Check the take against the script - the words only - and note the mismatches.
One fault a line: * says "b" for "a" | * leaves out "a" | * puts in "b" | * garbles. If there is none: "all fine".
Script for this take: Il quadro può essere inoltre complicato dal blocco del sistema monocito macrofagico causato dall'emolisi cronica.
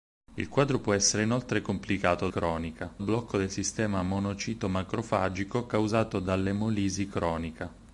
* says "cronica" for "dal"